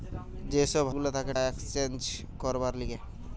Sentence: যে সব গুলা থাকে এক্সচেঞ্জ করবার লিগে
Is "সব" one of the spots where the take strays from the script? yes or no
no